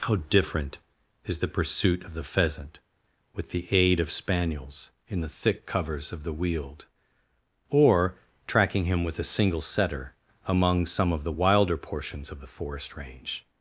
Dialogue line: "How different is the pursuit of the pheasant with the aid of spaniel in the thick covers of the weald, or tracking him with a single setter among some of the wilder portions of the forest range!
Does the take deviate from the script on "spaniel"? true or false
true